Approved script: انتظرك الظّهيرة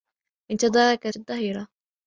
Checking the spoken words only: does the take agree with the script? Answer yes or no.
yes